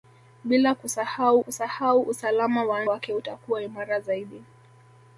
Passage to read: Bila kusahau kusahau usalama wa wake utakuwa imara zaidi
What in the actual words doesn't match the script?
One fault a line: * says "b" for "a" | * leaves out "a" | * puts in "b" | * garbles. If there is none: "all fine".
all fine